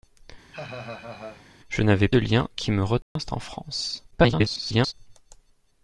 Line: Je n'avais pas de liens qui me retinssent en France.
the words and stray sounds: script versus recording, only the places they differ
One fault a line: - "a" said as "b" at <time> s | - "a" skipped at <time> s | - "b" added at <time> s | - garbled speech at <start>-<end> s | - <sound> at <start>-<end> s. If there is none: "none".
- laugh at 0.5-1.5 s
- "pas" skipped at 2.1 s
- dropout at 3.0-3.2 s
- garbled speech at 4.1-4.9 s